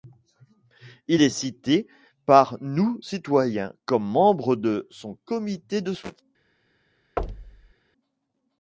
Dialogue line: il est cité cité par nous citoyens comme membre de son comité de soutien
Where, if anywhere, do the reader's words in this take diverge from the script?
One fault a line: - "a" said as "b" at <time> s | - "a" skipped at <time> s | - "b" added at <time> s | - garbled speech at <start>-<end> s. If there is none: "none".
- "cité" skipped at 1.9 s